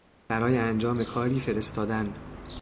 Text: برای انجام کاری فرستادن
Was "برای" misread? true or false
false